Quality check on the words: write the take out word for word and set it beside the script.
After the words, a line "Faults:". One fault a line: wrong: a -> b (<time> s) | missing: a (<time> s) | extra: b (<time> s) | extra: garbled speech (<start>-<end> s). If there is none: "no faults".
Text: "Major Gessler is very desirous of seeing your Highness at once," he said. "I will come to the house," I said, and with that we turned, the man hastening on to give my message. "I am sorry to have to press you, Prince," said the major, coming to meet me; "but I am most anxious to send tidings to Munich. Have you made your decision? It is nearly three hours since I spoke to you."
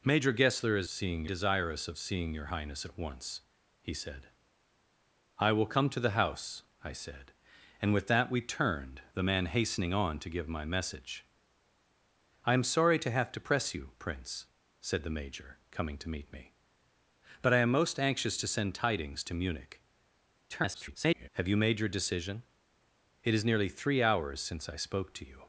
"Major Gessler is seeing desirous of seeing your Highness at once," he said. "I will come to the house," I said, and with that we turned, the man hastening on to give my message. "I am sorry to have to press you, Prince," said the major, coming to meet me; "but I am most anxious to send tidings to Munich. [garbled] Have you made your decision? It is nearly three hours since I spoke to you."
Faults:
wrong: very -> seeing (0.9 s)
extra: garbled speech (20.5-21.3 s)